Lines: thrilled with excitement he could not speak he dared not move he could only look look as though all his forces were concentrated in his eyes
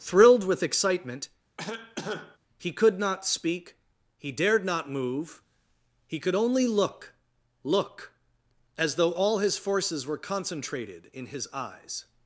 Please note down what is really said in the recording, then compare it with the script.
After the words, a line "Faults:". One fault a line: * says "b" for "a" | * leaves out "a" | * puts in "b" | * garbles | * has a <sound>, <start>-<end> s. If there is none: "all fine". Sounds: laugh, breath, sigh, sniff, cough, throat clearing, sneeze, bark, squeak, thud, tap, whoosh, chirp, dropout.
thrilled with excitement he could not speak he dared not move he could only look look as though all his forces were concentrated in his eyes
Faults:
* has a cough, 1.6-2.4 s